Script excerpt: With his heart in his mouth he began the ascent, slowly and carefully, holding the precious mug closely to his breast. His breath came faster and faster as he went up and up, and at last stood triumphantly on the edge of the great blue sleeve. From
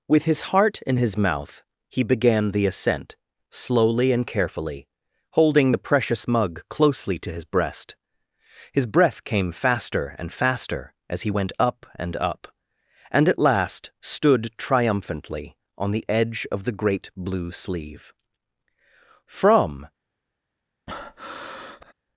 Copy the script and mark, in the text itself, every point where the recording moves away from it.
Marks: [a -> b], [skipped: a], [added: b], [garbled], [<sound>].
With his heart in his mouth he began the ascent, slowly and carefully, holding the precious mug closely to his breast. His breath came faster and faster as he went up and up, and at last stood triumphantly on the edge of the great blue sleeve. From [breath]